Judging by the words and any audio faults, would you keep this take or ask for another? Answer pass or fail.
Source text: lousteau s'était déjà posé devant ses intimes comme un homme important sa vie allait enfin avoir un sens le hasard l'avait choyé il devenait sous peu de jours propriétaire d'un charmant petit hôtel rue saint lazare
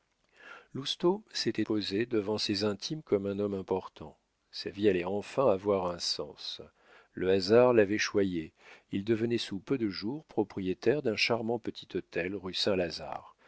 fail